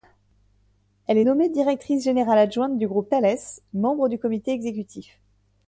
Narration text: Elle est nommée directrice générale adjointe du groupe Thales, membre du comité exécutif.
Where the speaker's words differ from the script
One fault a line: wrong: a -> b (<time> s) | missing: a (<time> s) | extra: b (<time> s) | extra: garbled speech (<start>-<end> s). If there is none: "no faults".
no faults